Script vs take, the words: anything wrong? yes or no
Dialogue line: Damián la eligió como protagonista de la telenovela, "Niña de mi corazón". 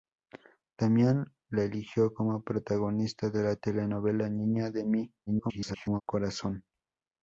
yes